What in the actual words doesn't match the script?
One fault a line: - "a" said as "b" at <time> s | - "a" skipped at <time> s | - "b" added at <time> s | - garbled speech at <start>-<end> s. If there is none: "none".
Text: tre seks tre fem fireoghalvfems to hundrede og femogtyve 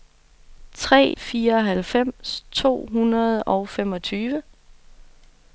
- "seks tre fem" skipped at 1.1 s